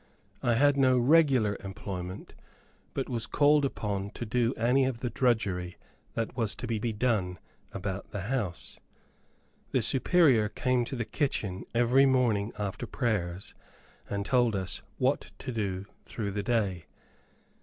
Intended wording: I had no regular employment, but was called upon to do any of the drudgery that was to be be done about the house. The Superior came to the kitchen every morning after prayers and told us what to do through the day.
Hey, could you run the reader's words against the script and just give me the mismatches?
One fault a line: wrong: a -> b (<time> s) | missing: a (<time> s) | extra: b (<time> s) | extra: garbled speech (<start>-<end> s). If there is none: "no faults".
no faults